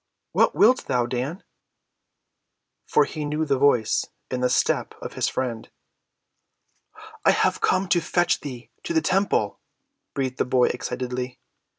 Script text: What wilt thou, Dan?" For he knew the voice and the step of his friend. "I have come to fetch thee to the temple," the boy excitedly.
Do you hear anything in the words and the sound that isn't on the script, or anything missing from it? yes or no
yes